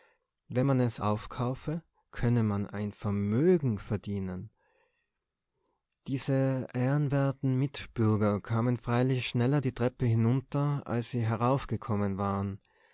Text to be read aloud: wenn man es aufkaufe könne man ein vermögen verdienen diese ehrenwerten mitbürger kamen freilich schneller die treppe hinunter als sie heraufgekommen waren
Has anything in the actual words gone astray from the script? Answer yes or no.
no